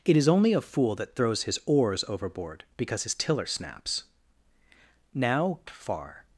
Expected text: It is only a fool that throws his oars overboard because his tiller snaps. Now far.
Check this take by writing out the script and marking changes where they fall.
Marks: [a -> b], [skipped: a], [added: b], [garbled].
It is only a fool that throws his oars overboard because his tiller snaps. Now far.